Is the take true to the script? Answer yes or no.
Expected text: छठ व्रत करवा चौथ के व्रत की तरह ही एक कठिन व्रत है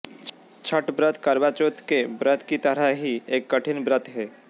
yes